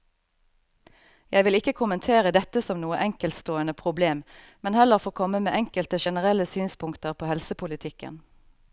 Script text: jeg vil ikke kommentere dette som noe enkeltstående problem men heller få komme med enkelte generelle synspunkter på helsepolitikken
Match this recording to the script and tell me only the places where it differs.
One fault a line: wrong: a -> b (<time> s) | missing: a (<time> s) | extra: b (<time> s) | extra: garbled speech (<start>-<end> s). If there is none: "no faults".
no faults